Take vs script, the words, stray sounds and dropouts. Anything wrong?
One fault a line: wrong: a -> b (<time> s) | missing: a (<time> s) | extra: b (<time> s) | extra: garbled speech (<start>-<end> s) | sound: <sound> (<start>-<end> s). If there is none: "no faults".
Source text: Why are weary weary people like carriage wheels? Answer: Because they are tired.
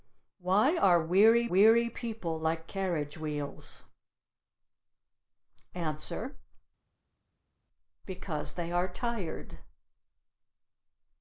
no faults